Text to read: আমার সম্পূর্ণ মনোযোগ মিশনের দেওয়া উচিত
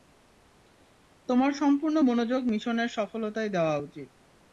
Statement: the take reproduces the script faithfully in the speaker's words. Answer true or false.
false